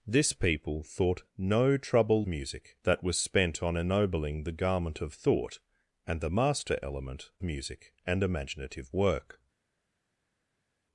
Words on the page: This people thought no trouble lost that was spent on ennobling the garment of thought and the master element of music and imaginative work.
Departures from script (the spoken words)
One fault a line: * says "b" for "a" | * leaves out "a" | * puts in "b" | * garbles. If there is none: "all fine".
* says "music" for "lost"
* leaves out "of"